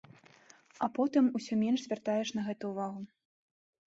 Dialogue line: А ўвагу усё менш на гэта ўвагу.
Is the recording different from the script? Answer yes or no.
yes